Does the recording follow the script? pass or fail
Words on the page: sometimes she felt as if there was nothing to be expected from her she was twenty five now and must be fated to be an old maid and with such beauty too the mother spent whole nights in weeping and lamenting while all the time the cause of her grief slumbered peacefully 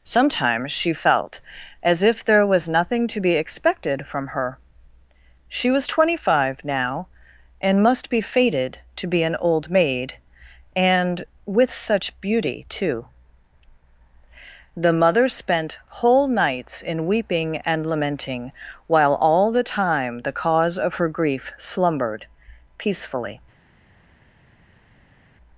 pass